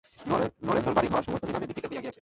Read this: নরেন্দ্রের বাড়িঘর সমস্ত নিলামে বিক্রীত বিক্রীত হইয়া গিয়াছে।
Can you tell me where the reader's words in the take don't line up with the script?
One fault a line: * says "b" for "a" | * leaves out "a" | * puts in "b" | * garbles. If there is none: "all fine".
* leaves out "বিক্রীত"